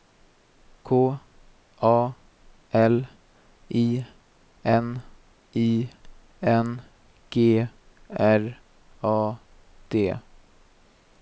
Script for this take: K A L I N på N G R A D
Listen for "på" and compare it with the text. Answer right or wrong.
wrong